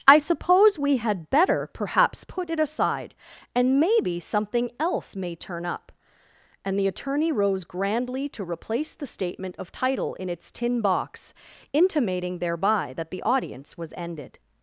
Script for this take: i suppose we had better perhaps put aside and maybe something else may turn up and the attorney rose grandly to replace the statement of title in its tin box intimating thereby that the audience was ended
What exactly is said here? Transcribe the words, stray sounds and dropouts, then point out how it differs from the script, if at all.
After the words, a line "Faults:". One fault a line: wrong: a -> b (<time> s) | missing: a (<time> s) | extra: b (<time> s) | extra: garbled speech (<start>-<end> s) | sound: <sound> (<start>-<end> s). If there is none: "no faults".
i suppose we had better perhaps put it aside and maybe something else may turn up and the attorney rose grandly to replace the statement of title in its tin box intimating thereby that the audience was ended
Faults:
extra: it (2.5 s)